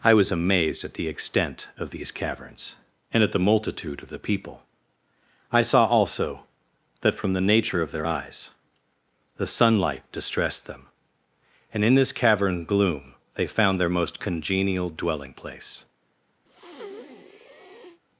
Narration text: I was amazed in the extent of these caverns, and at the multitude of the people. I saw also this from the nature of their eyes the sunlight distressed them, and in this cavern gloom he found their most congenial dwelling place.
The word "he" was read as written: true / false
false